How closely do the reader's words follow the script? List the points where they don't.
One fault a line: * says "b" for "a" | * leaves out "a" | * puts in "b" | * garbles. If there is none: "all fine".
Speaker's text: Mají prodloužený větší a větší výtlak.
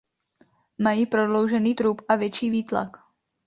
* says "trup" for "větší"